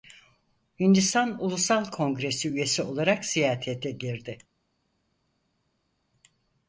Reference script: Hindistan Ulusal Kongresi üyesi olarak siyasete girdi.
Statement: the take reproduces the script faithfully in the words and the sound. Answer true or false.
true